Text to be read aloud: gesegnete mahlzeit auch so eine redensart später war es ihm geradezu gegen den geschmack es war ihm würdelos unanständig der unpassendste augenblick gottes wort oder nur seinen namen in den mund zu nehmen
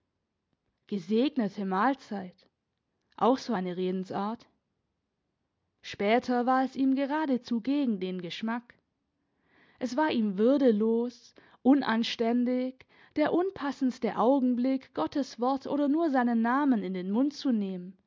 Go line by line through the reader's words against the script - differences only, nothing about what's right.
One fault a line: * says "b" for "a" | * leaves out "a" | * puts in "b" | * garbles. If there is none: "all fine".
all fine